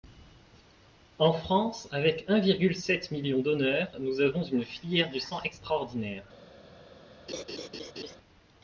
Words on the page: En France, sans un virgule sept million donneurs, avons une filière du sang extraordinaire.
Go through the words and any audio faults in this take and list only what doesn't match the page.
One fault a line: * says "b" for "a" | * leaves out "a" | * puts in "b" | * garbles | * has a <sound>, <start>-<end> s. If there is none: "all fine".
* says "avec" for "sans"
* puts in "nous"
* has a laugh, 7.3-8.2 s